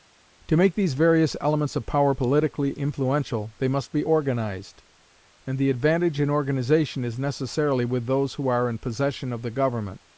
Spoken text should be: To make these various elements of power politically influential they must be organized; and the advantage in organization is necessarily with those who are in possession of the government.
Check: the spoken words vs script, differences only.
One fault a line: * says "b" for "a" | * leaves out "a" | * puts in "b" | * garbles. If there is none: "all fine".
all fine